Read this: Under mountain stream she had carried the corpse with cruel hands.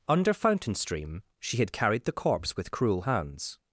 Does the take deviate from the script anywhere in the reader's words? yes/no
yes